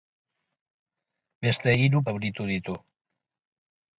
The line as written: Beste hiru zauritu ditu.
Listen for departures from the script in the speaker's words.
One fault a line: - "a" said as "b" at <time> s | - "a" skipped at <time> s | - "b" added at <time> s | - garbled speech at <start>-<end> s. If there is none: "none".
none